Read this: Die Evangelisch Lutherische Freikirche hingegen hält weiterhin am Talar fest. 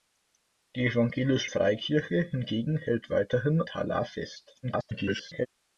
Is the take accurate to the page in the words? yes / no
no